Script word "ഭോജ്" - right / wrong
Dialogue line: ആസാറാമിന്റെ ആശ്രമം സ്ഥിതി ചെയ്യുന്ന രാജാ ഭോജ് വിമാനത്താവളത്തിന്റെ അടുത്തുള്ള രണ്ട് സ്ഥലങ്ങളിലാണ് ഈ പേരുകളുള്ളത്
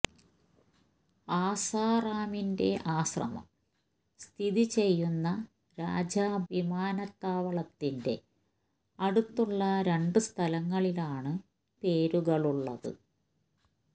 wrong